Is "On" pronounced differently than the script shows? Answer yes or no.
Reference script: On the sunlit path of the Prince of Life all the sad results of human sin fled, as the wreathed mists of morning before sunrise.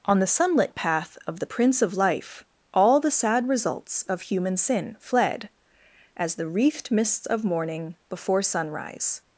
no